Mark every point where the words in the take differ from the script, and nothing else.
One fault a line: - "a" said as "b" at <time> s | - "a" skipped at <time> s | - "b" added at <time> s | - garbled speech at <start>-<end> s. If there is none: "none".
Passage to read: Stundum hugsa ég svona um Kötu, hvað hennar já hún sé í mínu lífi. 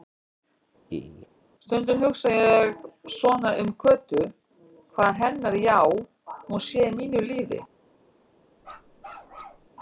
none